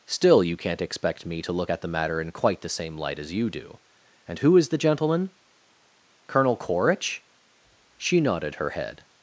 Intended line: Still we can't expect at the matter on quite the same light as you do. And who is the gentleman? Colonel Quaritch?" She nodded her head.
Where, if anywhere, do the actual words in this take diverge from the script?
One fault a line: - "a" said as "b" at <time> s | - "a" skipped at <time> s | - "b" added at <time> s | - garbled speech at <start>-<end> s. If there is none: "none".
- "we" said as "you" at 0.4 s
- "me to look" added at 1.2 s
- "on" said as "in" at 2.2 s